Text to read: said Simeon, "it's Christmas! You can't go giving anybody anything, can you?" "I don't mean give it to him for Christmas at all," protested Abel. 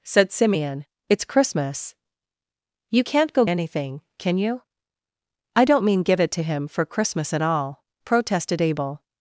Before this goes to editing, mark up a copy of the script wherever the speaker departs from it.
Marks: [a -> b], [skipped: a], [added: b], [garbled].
said Simeon, "it's Christmas! You can't go [skipped: giving anybody] anything, can you?" "I don't mean give it to him for Christmas at all," protested Abel.